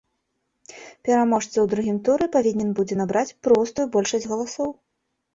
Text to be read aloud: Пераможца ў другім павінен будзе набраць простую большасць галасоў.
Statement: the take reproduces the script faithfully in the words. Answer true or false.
false